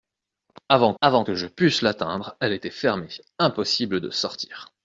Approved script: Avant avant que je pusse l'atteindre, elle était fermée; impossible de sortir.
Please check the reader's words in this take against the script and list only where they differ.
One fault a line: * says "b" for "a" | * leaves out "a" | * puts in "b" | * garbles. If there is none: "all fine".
all fine